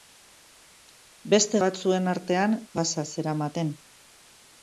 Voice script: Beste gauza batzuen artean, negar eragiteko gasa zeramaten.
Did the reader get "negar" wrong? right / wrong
wrong